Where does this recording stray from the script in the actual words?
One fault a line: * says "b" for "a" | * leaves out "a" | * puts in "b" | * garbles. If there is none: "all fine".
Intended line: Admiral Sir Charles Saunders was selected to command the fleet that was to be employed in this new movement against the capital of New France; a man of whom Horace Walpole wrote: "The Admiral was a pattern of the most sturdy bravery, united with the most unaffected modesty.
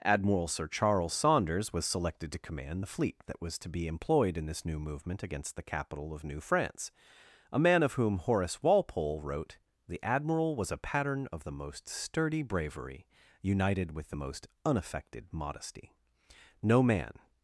* puts in "No man"